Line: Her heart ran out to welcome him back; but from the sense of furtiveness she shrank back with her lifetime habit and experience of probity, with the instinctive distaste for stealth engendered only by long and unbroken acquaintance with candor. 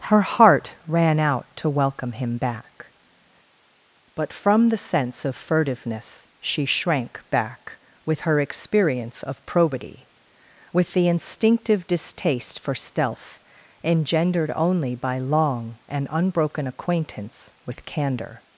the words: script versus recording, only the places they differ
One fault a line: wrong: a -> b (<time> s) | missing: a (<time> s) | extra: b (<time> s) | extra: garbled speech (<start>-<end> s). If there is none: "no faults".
missing: lifetime habit and (8.4 s)